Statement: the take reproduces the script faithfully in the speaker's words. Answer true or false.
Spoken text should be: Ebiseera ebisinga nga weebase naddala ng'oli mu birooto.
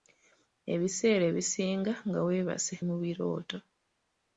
false